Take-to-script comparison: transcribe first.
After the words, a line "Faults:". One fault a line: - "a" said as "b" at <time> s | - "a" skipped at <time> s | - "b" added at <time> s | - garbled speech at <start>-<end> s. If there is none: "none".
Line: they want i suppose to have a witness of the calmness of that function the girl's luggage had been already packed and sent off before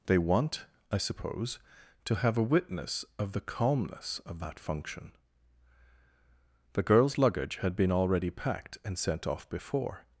they want i suppose to have a witness of the calmness of that function the girl's luggage had been already packed and sent off before
Faults:
none